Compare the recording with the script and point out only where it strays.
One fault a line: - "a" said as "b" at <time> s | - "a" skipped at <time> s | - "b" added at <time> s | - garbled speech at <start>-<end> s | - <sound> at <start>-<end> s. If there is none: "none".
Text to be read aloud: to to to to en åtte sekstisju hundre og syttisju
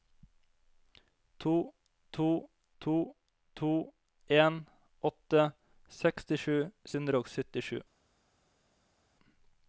none